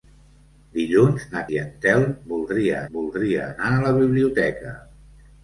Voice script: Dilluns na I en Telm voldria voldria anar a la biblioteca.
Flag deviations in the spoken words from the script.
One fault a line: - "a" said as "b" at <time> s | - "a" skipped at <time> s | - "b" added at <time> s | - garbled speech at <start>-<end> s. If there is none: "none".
none